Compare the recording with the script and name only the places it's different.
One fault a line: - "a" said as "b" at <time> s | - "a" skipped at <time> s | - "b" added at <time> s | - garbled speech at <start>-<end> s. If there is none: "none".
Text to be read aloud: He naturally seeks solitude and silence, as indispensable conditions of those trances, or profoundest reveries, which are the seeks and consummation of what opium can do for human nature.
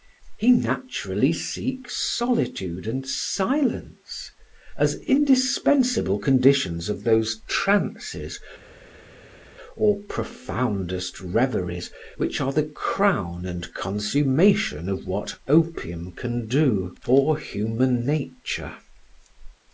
- "seeks" said as "crown" at 12.7 s